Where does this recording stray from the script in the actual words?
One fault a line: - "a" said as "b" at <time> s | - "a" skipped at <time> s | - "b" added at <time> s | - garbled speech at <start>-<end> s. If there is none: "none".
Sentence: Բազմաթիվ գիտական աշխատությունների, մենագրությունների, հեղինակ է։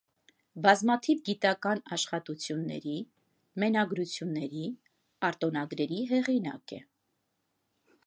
- "արտոնագրերի" added at 5.3 s